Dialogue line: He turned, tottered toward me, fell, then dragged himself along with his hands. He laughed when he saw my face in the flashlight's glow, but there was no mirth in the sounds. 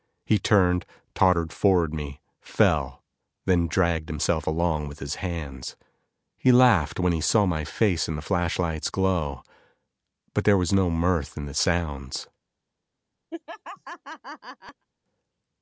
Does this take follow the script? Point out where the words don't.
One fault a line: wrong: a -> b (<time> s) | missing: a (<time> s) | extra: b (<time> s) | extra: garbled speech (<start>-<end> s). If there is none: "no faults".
no faults